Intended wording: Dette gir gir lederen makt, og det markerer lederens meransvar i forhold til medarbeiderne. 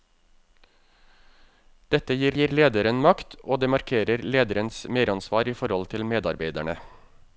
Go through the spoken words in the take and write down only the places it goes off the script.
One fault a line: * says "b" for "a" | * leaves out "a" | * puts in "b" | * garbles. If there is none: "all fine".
all fine